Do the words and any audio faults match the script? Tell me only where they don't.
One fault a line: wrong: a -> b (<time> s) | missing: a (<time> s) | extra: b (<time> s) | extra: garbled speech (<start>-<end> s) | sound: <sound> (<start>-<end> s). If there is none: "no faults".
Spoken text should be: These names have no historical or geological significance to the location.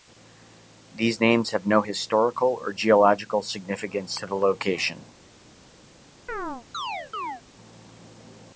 sound: chirp (6.3-7.4 s)